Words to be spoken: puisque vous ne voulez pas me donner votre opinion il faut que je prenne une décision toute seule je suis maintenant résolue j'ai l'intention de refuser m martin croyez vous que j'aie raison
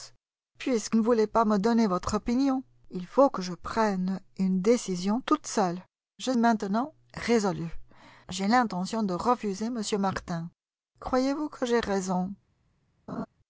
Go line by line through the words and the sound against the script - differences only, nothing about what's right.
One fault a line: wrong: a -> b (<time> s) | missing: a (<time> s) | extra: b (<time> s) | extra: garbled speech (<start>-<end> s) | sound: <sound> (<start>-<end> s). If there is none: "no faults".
missing: vous (1.0 s)
missing: suis (6.3 s)
sound: laugh (13.1-13.3 s)